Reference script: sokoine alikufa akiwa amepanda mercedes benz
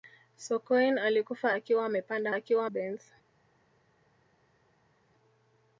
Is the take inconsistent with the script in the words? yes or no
yes